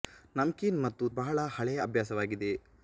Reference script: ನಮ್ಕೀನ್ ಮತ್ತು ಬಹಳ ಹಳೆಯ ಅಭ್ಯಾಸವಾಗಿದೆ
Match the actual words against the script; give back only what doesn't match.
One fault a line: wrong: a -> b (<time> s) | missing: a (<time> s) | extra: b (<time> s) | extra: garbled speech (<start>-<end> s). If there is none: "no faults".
no faults